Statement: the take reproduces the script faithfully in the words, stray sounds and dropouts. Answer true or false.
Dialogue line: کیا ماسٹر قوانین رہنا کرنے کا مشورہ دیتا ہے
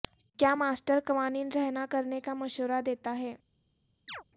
false